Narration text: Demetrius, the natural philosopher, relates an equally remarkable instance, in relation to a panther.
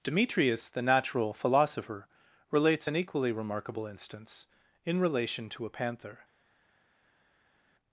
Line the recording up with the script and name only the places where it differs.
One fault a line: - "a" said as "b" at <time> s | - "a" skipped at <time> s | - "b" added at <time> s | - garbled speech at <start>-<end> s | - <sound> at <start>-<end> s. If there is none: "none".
none